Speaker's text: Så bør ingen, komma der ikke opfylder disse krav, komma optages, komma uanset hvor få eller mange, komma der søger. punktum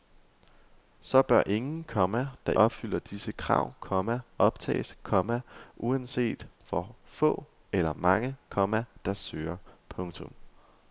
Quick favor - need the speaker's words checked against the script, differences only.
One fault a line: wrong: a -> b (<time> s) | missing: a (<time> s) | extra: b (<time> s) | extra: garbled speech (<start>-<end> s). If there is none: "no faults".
missing: ikke (2.5 s)